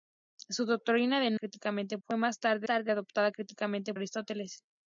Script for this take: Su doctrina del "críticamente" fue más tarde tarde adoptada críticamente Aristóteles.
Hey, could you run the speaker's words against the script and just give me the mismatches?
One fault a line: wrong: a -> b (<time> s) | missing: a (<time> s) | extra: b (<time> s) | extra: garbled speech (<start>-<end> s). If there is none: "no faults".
no faults